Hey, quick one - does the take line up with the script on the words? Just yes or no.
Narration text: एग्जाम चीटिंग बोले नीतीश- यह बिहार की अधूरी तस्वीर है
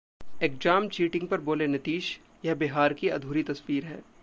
no